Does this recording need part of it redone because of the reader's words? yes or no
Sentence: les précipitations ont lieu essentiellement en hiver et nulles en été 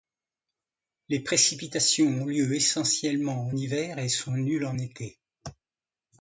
yes